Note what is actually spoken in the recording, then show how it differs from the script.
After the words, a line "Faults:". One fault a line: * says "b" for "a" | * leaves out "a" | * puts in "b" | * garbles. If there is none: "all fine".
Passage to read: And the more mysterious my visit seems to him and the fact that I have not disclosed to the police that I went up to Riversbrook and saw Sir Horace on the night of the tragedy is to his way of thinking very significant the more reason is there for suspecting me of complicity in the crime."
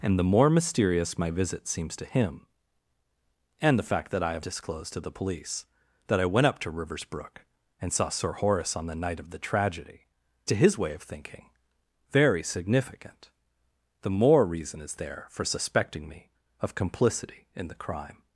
And the more mysterious my visit seems to him and the fact that I have disclosed to the police that I went up to Riversbrook and saw Sir Horace on the night of the tragedy to his way of thinking very significant the more reason is there for suspecting me of complicity in the crime."
Faults:
* leaves out "not"
* leaves out "is"